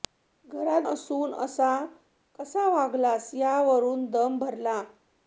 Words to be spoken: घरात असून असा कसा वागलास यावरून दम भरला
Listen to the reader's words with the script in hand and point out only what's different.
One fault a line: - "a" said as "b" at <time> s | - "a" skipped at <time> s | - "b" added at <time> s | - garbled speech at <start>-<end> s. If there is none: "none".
none